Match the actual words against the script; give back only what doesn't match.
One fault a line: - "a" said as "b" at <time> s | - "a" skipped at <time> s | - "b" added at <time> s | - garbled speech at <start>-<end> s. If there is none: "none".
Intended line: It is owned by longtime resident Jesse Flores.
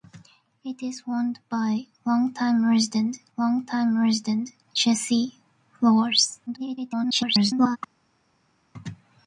- "longtime resident" added at 3.4 s
- garbled speech at 6.5-7.8 s